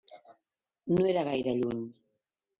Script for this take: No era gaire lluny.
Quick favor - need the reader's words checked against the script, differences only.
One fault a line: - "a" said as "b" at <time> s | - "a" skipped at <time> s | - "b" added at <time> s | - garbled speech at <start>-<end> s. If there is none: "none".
none